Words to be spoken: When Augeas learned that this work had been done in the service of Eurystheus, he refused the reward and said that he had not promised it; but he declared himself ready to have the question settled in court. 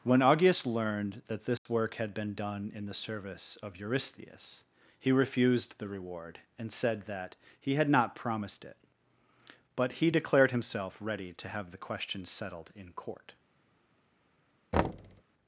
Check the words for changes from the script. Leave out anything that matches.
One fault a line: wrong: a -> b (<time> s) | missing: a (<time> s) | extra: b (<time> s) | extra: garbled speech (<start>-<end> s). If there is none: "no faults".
no faults